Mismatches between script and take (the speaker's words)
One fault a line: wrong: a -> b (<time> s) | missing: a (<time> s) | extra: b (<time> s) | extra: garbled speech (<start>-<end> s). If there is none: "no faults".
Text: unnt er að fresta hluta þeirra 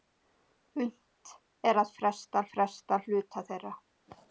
extra: fresta (2.5 s)